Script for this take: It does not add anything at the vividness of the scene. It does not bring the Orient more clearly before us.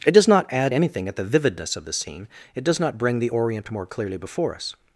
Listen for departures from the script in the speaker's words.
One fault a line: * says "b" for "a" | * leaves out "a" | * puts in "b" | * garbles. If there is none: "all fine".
all fine